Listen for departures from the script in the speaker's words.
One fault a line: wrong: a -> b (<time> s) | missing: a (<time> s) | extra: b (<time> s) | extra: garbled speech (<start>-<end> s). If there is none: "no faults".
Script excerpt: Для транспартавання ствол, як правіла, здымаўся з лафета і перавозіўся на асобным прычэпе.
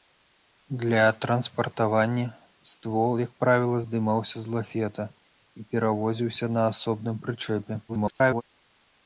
extra: garbled speech (7.9-8.4 s)